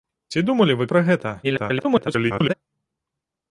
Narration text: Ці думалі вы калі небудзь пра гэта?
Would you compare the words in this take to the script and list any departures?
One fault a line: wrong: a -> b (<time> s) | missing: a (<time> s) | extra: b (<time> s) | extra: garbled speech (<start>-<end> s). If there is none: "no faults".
missing: калі небудзь (0.8 s)
extra: garbled speech (1.4-2.5 s)